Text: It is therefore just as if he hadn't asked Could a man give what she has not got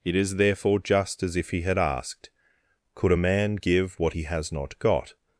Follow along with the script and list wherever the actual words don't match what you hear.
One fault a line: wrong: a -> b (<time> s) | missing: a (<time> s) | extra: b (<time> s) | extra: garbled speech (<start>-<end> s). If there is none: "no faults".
wrong: hadn't -> had (1.6 s)
wrong: she -> he (4.1 s)